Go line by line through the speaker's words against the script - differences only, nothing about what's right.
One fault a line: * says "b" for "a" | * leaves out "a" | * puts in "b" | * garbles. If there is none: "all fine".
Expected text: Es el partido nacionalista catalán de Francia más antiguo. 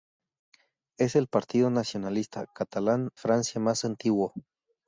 * leaves out "de"